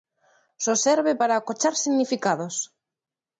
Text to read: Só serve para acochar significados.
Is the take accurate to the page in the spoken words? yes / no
yes